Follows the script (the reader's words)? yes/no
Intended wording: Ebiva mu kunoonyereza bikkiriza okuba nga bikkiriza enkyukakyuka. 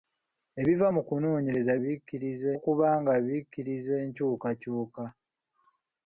yes